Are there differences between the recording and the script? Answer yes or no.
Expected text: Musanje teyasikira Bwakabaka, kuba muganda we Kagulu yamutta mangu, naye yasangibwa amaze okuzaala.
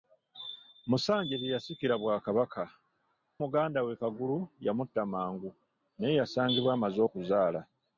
yes